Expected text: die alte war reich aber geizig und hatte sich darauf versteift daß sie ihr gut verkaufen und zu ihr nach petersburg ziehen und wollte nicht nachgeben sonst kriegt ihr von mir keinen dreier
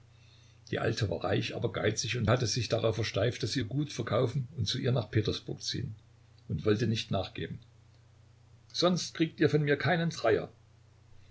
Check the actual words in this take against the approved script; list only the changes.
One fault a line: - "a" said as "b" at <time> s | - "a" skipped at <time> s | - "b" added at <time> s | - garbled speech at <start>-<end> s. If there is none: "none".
none